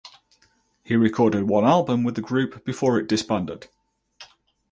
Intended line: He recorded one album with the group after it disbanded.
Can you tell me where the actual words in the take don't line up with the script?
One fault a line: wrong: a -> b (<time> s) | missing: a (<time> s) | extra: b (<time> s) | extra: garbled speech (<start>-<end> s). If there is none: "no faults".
wrong: after -> before (2.6 s)